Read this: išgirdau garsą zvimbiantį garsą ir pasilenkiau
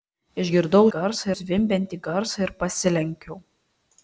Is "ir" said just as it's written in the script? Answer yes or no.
yes